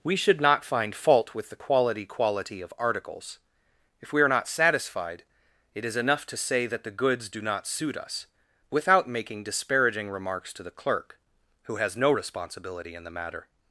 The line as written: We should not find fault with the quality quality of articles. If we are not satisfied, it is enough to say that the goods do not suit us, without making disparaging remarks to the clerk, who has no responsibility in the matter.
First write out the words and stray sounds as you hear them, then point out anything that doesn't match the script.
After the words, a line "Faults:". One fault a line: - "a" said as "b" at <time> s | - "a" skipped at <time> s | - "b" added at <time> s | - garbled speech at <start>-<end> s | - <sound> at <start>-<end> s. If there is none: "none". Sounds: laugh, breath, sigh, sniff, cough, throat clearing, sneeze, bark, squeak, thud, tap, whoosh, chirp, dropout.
We should not find fault with the quality quality of articles. If we are not satisfied, it is enough to say that the goods do not suit us, without making disparaging remarks to the clerk, who has no responsibility in the matter.
Faults:
none